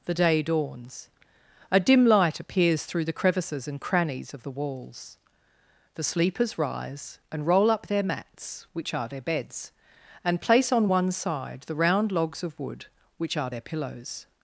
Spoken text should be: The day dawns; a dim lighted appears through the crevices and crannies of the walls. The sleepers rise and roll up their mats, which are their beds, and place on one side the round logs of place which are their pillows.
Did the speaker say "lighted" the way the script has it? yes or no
no